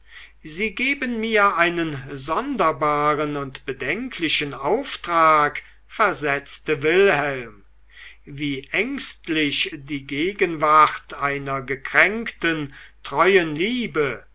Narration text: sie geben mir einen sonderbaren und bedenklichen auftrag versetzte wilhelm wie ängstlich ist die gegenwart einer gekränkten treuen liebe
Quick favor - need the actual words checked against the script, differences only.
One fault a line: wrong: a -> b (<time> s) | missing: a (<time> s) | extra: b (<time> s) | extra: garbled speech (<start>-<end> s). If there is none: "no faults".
missing: ist (9.8 s)